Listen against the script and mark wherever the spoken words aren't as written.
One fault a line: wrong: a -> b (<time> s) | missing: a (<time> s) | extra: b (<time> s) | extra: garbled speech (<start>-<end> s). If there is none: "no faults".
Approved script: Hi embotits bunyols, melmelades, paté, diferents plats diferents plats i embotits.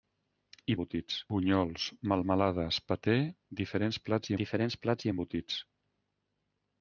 no faults